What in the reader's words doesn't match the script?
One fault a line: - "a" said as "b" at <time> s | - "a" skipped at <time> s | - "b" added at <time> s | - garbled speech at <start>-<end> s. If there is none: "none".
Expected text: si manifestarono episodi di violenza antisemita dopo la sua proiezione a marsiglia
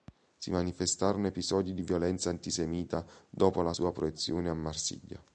none